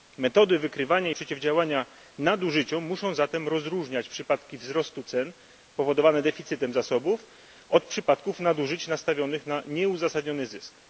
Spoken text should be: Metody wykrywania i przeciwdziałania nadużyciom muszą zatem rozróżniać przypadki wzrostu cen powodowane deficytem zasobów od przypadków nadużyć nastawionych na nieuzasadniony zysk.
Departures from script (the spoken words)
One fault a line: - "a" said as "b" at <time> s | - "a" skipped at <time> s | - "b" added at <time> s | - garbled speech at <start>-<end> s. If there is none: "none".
none